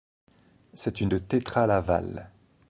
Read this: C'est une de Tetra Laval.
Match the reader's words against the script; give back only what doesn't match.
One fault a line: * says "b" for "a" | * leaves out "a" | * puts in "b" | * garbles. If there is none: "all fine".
all fine